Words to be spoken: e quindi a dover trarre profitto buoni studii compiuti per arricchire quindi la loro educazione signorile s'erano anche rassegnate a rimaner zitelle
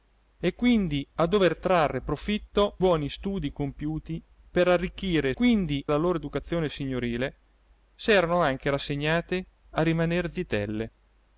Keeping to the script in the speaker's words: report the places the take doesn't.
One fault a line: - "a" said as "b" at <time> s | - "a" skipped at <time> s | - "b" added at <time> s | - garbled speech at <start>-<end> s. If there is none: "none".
none